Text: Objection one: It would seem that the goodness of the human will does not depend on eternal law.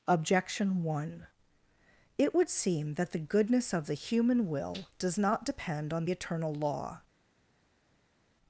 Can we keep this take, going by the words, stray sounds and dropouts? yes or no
yes